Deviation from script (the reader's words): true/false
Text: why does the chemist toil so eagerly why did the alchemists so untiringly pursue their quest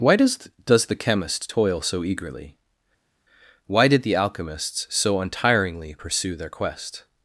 true